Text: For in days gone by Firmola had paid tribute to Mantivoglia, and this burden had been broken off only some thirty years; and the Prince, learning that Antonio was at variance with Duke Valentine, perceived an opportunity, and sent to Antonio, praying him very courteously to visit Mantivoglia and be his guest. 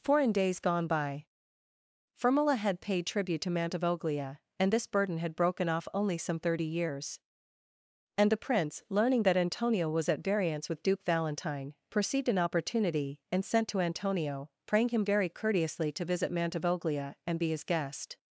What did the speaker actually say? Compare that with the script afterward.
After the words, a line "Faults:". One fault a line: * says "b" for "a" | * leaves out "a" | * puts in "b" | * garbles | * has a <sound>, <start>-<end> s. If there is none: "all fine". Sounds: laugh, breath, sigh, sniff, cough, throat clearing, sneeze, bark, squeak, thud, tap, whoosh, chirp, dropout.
For in days gone by Firmola had paid tribute to Mantivoglia, and this burden had broken off only some thirty years; and the Prince, learning that Antonio was at variance with Duke Valentine, perceived an opportunity, and sent to Antonio, praying him very courteously to visit Mantivoglia and be his guest.
Faults:
* leaves out "been"